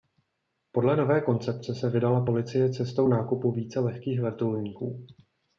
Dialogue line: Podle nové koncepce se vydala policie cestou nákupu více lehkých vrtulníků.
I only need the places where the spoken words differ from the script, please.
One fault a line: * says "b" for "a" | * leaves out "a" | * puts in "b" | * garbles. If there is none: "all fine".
all fine